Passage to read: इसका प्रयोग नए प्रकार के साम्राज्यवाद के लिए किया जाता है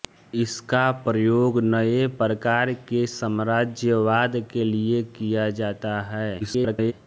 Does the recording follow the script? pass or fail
fail